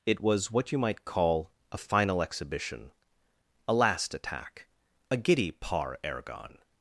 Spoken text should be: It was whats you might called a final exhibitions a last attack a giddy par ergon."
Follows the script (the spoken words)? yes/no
no